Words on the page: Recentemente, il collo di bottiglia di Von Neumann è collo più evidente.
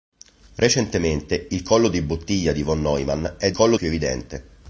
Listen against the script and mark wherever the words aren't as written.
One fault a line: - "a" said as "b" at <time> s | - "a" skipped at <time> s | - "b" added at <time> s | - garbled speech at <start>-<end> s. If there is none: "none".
none